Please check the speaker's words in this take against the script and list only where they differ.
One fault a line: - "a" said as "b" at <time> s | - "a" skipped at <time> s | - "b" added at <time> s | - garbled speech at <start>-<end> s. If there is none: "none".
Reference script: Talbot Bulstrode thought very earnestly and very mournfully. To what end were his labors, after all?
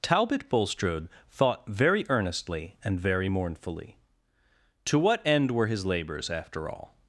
none